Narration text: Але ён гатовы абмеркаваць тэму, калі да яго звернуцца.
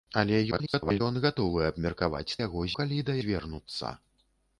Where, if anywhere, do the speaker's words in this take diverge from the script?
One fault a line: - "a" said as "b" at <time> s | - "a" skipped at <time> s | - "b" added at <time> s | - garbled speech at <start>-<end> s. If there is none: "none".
- garbled speech at 0.5-1.0 s
- "тэму" said as "яго" at 2.4 s
- "яго" skipped at 3.2 s